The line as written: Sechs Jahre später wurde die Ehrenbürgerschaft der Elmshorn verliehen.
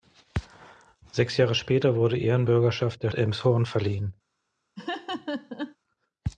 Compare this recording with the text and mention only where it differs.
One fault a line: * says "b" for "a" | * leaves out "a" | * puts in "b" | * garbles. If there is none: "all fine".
all fine